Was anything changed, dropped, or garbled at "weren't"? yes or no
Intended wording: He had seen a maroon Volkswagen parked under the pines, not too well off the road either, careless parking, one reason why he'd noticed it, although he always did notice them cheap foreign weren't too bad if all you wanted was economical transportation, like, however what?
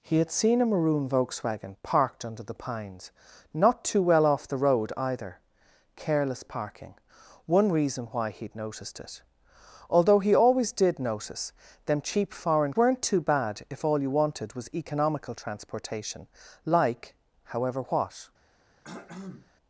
no